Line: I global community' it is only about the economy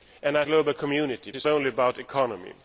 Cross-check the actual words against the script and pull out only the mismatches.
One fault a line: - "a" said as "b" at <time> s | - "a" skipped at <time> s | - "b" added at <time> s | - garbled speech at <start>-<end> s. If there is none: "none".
none